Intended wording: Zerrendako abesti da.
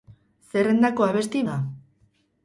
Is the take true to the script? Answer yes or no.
yes